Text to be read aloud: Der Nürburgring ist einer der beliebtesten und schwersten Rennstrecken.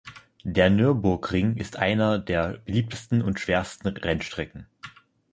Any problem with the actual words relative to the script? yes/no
no